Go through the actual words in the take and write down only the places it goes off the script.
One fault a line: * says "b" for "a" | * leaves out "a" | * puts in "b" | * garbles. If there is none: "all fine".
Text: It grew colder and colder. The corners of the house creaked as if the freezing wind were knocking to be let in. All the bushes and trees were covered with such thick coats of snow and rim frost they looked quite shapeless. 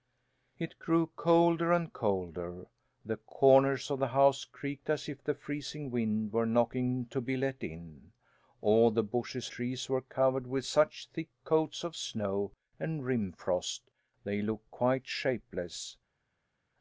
* leaves out "and"